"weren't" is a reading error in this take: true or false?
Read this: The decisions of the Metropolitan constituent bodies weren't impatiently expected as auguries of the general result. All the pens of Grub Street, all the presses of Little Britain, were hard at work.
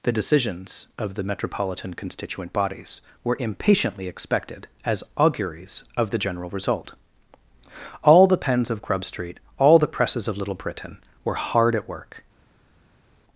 true